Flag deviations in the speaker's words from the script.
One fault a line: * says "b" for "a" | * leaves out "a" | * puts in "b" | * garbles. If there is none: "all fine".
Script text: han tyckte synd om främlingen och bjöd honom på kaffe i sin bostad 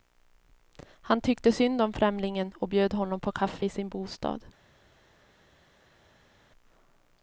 all fine